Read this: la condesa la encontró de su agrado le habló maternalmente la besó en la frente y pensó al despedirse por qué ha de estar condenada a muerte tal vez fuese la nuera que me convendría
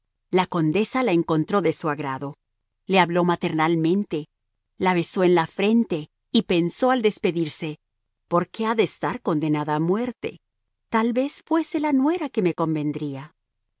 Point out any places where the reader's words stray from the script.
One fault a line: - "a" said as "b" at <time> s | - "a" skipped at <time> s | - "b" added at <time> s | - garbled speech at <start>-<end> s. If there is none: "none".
none